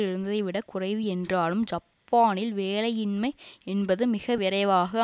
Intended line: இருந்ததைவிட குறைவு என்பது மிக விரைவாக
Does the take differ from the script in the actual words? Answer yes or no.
yes